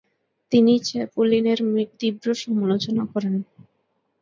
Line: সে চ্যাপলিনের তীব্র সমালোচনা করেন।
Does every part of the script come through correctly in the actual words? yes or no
no